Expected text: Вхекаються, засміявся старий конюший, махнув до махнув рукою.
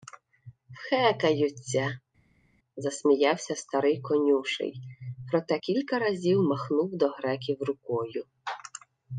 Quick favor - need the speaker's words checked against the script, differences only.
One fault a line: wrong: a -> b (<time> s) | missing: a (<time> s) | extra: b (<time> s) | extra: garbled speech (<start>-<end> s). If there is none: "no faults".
extra: проте кілька разів (5.3 s)
wrong: махнув -> греків (7.1 s)